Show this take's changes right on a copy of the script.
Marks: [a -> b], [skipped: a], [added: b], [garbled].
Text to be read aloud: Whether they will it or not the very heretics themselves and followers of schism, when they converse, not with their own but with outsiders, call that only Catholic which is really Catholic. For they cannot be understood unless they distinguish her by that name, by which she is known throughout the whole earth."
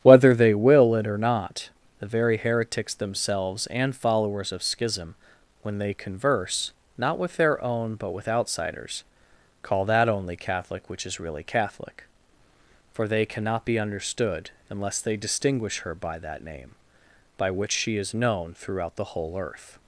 Whether they will it or not the very heretics themselves and followers of schism, when they converse, not with their own but with outsiders, call that only Catholic which is really Catholic. For they cannot be understood unless they distinguish her by that name, by which she is known throughout the whole earth."